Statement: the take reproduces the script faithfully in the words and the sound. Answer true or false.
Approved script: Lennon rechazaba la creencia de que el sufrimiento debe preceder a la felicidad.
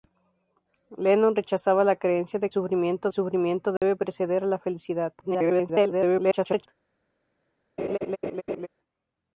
false